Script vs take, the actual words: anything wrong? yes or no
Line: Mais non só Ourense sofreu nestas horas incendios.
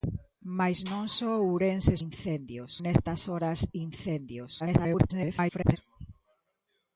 yes